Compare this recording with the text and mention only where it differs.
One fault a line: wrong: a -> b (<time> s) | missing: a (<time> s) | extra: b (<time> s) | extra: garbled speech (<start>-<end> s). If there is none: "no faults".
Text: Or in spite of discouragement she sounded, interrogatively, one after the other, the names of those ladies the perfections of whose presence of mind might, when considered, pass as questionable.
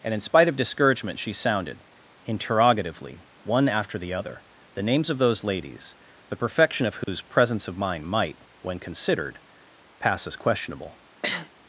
wrong: Or -> And (0.0 s)
wrong: perfections -> perfection (6.4 s)